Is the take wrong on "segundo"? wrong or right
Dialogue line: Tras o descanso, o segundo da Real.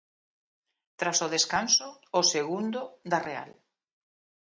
right